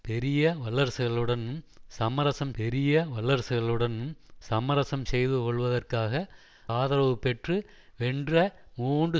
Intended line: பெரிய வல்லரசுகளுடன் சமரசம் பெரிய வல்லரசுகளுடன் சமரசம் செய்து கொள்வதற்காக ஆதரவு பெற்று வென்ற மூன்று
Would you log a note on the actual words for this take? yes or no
no